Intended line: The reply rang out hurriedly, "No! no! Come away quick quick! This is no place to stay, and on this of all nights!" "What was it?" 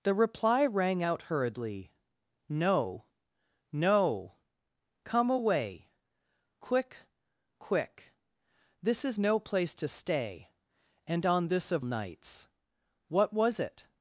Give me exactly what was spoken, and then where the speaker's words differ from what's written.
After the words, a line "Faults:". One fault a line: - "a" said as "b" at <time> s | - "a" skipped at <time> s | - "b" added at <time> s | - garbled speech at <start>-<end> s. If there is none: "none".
The reply rang out hurriedly, "No! no! Come away quick quick! This is no place to stay, and on this of nights!" "What was it?"
Faults:
- "all" skipped at 11.8 s